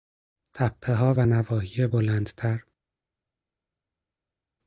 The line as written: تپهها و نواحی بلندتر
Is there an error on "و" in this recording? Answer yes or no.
no